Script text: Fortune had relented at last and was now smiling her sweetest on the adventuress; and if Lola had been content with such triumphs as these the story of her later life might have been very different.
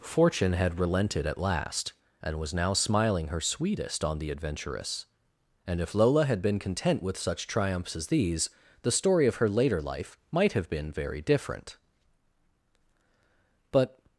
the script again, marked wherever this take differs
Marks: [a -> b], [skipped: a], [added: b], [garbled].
Fortune had relented at last and was now smiling her sweetest on the adventuress; and if Lola had been content with such triumphs as these the story of her later life might have been very different. [added: But]